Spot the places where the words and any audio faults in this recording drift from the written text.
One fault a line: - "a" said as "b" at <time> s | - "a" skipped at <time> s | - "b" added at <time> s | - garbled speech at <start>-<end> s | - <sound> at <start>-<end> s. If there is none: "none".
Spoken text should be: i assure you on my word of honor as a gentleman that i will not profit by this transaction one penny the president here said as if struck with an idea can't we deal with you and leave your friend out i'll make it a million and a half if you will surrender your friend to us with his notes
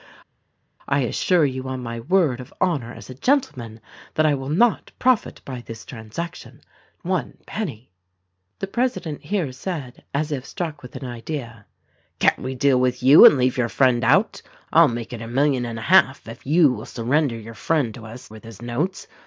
none